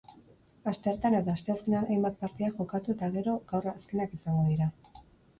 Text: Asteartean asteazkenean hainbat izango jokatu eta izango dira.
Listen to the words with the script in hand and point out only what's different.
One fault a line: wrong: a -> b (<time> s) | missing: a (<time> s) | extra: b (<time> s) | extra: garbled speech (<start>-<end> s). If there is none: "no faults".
extra: eta (1.2 s)
wrong: izango -> partida (2.2 s)
extra: gero gaur azkenak (3.2 s)